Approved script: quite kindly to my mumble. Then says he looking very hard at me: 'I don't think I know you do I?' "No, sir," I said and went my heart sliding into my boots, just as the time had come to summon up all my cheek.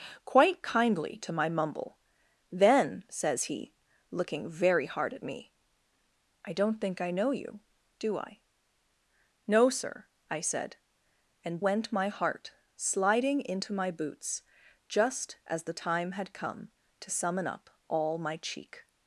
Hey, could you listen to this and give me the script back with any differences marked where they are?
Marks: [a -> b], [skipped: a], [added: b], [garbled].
quite kindly to my mumble. Then says he looking very hard at me: 'I don't think I know you do I?' "No, sir," I said and went my heart sliding into my boots, just as the time had come to summon up all my cheek.